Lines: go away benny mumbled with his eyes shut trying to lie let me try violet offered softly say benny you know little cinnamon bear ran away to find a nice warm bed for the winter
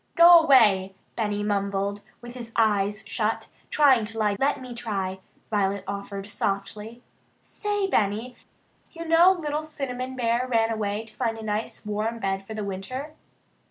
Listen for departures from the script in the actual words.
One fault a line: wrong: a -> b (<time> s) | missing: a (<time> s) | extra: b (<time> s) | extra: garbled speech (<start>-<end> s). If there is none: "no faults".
no faults